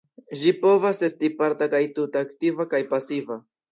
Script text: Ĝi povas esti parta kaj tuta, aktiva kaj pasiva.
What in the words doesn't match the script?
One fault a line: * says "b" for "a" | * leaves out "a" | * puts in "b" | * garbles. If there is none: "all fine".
all fine